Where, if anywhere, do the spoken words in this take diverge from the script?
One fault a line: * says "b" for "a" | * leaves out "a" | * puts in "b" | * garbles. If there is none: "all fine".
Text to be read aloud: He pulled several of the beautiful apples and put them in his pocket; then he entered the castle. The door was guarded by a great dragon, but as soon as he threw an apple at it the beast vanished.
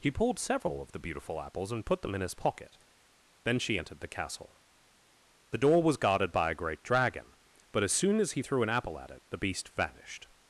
* says "she" for "he"